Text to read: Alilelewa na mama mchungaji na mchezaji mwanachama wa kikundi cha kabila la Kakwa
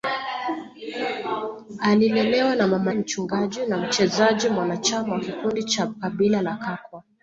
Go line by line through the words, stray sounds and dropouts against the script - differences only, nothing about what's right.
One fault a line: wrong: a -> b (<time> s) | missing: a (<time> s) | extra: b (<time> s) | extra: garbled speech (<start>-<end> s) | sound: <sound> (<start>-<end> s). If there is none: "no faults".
no faults